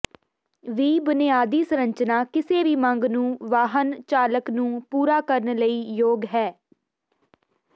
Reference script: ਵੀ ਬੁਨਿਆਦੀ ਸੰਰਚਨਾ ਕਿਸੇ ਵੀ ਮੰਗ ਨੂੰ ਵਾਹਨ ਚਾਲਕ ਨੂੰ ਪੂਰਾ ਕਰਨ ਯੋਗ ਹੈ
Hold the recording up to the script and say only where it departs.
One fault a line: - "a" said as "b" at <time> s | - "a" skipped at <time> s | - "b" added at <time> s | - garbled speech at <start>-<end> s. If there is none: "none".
- "ਲਈ" added at 5.6 s